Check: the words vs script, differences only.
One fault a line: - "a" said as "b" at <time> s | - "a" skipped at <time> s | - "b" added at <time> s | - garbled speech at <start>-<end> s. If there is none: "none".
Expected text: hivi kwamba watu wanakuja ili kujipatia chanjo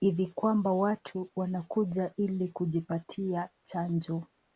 none